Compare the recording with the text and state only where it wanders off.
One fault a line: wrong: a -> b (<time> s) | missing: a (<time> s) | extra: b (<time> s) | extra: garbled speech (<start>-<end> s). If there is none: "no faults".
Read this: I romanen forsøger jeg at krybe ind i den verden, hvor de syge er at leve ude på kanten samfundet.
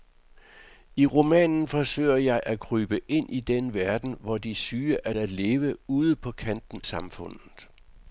no faults